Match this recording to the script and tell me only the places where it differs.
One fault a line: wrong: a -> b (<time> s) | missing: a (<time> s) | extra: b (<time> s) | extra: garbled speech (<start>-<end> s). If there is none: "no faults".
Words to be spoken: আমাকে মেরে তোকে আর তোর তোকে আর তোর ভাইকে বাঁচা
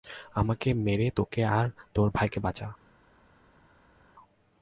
missing: তোকে আর তোর (2.1 s)